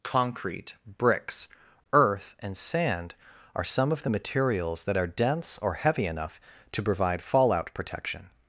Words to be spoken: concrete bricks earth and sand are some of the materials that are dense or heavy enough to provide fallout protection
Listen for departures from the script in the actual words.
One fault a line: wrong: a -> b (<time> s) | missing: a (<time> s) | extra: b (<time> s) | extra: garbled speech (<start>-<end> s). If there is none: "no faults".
no faults